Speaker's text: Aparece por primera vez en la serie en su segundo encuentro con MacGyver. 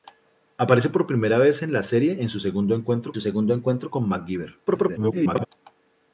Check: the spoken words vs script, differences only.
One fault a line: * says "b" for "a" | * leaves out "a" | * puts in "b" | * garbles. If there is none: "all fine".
* puts in "su segundo encuentro"
* garbles